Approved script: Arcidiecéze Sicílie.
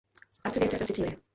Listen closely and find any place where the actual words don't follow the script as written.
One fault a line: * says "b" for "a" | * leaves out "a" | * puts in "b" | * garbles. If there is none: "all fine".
all fine